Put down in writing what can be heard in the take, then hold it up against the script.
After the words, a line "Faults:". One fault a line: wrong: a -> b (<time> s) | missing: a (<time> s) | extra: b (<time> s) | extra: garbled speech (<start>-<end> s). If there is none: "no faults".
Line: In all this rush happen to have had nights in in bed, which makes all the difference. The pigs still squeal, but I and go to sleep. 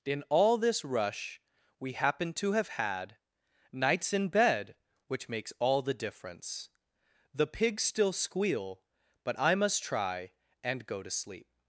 In all this rush we happen to have had nights in bed, which makes all the difference. The pigs still squeal, but I must try and go to sleep.
Faults:
extra: we (1.8 s)
missing: in (4.3 s)
extra: must try (9.6 s)